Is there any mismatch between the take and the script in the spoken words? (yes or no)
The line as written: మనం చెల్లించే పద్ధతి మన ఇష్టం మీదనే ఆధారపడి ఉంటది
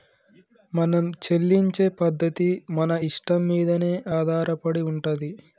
no